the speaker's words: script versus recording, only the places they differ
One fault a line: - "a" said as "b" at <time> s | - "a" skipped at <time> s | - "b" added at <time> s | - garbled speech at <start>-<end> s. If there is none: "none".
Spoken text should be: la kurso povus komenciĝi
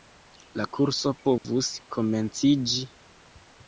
none